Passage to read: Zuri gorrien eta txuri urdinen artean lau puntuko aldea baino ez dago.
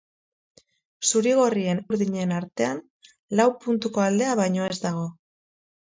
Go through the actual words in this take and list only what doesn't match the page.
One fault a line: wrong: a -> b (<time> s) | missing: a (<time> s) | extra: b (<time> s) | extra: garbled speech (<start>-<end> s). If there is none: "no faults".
missing: eta txuri (1.8 s)